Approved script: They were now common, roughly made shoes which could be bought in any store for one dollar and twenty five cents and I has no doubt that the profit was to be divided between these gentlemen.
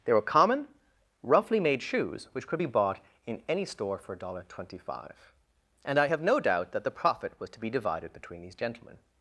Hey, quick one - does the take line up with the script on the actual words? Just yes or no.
no